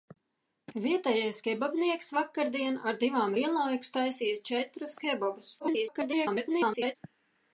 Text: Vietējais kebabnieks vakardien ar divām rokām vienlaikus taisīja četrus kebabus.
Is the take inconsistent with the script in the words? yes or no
yes